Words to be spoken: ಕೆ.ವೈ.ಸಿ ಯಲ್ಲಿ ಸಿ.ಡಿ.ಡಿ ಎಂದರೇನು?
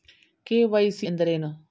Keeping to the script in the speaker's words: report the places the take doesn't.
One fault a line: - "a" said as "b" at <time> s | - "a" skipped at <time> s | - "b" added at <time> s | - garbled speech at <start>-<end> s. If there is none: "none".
- "ಯಲ್ಲಿ ಸಿ.ಡಿ.ಡಿ" skipped at 1.1 s